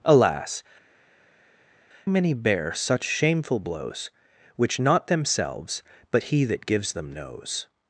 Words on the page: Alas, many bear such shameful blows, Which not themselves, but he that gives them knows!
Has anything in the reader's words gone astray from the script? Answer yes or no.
no